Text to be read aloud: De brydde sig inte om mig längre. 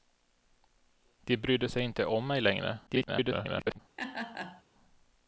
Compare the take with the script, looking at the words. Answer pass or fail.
fail